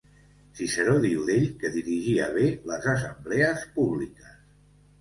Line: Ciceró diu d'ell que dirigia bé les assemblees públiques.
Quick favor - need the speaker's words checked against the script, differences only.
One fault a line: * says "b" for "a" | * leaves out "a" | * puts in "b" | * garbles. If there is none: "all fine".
all fine